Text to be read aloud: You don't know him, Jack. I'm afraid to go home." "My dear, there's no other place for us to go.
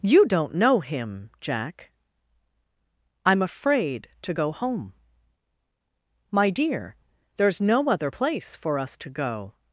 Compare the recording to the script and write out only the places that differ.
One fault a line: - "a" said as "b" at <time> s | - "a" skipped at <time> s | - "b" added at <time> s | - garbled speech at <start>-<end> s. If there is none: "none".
none